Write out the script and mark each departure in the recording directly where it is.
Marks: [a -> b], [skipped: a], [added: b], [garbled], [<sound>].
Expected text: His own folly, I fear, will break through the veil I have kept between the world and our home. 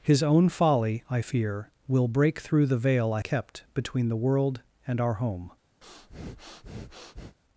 His own folly, I fear, will break through the veil I [skipped: have] kept between the world and our home. [breath]